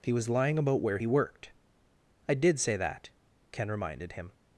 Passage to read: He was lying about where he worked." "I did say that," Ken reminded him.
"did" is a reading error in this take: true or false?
false